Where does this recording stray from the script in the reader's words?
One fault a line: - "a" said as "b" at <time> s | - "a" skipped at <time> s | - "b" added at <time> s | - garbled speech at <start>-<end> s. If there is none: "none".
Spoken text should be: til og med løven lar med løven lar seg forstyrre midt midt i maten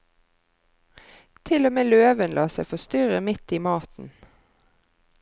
- "med løven lar" skipped at 2.5 s
- "midt" skipped at 3.6 s